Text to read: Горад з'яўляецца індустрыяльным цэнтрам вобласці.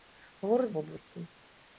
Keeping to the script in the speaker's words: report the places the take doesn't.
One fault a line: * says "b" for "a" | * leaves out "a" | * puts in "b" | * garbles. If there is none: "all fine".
* leaves out "з'яўляецца індустрыяльным цэнтрам"